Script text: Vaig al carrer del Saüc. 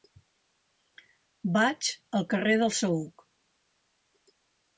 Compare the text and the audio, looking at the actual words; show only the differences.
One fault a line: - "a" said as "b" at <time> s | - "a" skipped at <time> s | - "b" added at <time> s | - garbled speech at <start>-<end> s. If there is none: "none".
none